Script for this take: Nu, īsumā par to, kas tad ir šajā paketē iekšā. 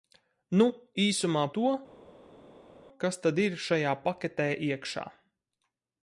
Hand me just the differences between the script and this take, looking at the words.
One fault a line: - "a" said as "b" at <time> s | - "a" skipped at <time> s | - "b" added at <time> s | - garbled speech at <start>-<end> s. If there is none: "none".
- "par" skipped at 1.4 s